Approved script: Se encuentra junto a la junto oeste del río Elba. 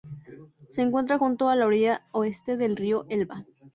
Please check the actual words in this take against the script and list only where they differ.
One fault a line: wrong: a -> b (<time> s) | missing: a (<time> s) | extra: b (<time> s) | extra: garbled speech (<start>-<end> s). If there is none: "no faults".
wrong: junto -> orilla (1.7 s)